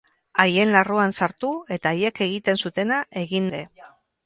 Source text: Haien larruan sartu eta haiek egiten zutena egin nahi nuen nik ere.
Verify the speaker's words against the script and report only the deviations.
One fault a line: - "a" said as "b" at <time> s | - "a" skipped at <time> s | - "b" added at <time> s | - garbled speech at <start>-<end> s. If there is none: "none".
- "nahi nuen nik" skipped at 3.5 s